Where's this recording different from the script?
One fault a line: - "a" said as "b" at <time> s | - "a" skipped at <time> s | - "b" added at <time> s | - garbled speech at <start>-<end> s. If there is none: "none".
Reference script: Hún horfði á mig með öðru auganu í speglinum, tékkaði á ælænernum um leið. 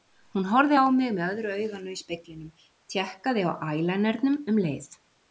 none